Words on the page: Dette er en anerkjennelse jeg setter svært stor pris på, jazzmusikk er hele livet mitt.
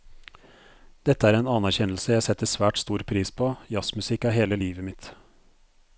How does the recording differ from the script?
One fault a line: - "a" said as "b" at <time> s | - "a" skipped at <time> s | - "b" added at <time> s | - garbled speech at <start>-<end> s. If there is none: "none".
none